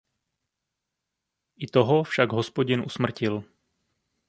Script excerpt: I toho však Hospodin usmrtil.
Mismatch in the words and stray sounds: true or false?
false